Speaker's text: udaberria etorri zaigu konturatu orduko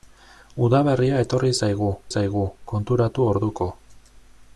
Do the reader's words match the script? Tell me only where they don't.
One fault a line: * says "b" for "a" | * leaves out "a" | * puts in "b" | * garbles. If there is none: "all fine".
* puts in "zaigu"